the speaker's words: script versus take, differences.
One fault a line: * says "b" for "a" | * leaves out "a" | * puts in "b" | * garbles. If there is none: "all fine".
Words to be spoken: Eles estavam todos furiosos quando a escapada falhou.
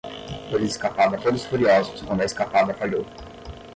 * says "escapada" for "estavam"